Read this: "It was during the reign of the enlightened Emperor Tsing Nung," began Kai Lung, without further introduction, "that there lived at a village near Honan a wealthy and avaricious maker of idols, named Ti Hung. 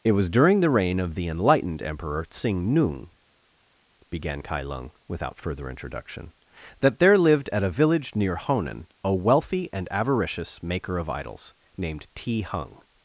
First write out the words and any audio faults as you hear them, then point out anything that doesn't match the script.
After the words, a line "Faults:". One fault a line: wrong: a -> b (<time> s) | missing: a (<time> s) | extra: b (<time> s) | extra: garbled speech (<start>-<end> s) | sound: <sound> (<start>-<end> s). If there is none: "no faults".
"It was during the reign of the enlightened Emperor Tsing Nung," began Kai Lung, without further introduction, "that there lived at a village near Honan a wealthy and avaricious maker of idols, named Ti Hung.
Faults:
no faults